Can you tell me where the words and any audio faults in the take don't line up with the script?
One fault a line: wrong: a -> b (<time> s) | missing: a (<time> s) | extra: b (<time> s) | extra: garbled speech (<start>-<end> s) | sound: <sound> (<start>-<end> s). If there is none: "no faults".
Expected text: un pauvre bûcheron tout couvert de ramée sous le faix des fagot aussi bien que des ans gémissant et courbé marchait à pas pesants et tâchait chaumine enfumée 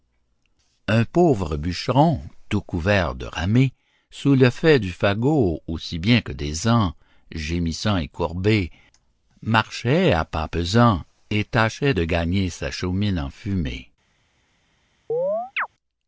wrong: des -> du (4.8 s)
extra: de gagner sa (11.9 s)
sound: chirp (15.1-15.7 s)